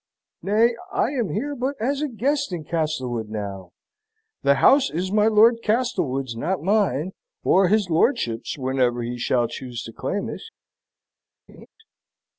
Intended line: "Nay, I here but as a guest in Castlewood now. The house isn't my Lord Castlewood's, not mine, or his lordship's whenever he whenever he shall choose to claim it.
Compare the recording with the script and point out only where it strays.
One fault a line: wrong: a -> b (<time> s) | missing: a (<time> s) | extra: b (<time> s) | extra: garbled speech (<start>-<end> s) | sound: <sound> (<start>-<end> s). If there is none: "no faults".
extra: am (1.1 s)
wrong: isn't -> is (4.9 s)
missing: whenever he (9.2 s)
sound: laugh (11.5-11.7 s)